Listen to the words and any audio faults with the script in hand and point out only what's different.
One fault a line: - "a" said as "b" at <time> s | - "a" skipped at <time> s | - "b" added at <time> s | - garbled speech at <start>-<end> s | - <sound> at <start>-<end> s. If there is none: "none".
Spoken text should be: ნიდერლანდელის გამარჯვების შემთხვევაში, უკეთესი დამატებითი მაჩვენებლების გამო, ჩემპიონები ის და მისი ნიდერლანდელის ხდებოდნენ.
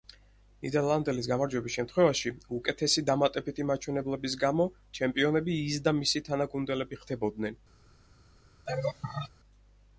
- "ნიდერლანდელის" said as "თანაგუნდელები" at 6.3 s
- laugh at 8.7-9.3 s